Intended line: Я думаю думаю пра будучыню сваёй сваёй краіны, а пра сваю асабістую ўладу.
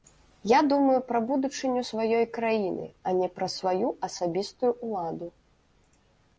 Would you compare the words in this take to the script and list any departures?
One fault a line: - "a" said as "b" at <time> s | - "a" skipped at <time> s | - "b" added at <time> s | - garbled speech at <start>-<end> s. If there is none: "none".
- "думаю" skipped at 0.9 s
- "сваёй" skipped at 2.2 s
- "не" added at 3.2 s